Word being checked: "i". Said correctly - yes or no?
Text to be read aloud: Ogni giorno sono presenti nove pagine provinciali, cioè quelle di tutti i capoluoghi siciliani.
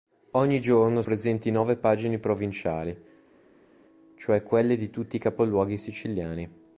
yes